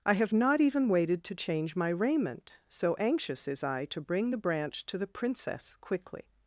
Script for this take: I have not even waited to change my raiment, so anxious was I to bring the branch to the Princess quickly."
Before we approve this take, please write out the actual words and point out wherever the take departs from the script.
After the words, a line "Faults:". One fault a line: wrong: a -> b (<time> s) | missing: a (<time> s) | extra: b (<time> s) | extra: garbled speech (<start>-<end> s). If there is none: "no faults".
I have not even waited to change my raiment, so anxious is I to bring the branch to the Princess quickly."
Faults:
wrong: was -> is (3.5 s)